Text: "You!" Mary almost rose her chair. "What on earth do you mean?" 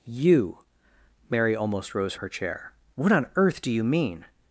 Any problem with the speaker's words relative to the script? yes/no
no